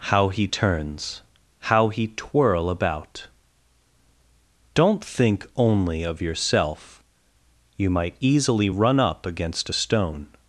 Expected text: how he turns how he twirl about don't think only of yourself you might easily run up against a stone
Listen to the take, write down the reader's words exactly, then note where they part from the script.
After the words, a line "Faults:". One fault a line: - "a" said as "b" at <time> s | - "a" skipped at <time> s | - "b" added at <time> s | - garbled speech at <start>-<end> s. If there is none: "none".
how he turns how he twirl about don't think only of yourself you might easily run up against a stone
Faults:
none